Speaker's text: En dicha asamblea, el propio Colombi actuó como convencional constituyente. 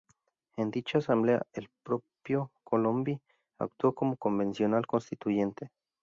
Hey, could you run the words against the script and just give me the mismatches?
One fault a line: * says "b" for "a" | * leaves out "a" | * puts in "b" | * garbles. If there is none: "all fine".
all fine